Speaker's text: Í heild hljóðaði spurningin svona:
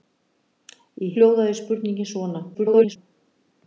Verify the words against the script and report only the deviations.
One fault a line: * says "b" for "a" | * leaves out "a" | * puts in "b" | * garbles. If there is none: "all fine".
* leaves out "heild"
* garbles